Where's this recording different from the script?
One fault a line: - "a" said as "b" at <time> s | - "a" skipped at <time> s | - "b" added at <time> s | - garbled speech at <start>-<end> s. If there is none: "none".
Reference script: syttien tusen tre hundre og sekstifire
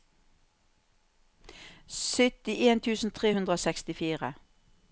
none